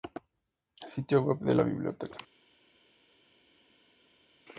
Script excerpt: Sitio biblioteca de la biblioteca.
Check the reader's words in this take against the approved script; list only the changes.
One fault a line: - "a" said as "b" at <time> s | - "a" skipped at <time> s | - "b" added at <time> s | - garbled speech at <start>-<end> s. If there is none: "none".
- "biblioteca" said as "web" at 1.2 s